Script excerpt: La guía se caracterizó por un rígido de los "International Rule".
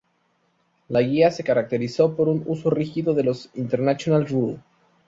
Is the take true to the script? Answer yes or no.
no